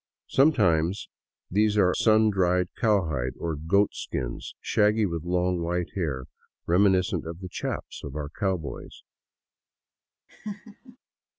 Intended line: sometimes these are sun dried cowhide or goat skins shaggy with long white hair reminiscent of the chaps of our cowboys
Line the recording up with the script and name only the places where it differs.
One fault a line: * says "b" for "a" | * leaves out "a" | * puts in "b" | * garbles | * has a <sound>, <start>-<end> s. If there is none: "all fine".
* has a laugh, 10.3-11.0 s